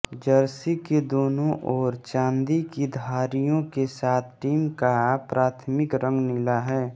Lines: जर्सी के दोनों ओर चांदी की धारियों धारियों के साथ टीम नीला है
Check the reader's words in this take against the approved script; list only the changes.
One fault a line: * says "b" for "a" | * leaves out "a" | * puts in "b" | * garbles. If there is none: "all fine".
* leaves out "धारियों"
* puts in "का प्राथमिक रंग"